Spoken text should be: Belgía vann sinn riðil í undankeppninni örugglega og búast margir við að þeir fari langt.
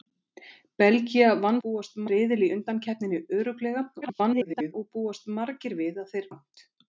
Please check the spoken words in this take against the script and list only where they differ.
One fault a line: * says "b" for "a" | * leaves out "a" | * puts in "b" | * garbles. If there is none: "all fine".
* says "búast" for "sinn"
* garbles
* leaves out "fari"